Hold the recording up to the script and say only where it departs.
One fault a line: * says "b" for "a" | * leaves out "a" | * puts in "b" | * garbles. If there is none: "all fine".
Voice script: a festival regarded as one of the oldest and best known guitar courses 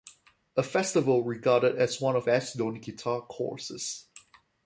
* leaves out "the oldest and"